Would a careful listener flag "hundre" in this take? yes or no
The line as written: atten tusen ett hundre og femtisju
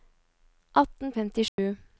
yes